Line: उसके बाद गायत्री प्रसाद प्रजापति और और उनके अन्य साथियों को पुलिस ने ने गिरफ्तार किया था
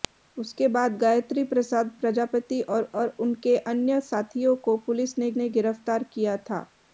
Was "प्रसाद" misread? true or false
false